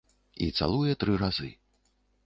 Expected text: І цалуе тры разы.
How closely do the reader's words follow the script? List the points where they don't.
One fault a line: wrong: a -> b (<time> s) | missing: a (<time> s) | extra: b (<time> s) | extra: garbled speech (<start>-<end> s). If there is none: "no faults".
no faults